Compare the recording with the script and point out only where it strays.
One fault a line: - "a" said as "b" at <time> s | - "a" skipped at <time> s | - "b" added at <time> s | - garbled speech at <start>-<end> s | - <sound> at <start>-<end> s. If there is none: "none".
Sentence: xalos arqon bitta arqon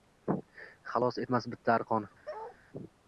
- "arqon" said as "etmas" at 1.2 s
- bark at 2.2-2.6 s